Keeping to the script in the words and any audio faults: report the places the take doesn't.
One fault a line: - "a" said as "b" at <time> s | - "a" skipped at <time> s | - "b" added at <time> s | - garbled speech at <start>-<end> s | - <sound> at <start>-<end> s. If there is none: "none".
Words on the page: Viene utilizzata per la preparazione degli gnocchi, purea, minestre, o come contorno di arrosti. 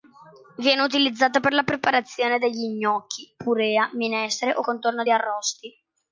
- "come" skipped at 4.6 s